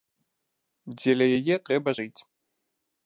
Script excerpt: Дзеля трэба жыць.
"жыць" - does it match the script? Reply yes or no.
yes